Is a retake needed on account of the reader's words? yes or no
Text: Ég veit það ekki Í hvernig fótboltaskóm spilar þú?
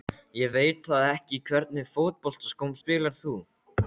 no